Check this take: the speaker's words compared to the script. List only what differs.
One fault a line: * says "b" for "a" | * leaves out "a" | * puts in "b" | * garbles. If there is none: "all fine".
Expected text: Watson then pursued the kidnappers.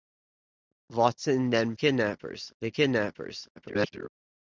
* says "kidnappers" for "pursued"
* garbles